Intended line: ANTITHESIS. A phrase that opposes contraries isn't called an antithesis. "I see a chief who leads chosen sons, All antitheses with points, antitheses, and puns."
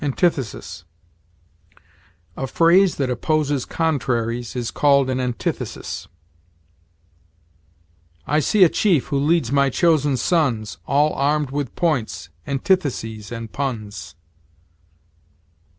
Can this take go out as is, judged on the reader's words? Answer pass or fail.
fail